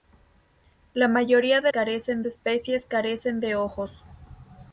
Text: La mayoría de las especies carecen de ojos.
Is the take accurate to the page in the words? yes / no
no